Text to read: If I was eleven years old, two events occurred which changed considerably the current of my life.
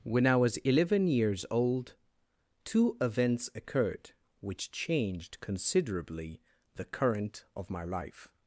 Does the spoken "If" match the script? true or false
false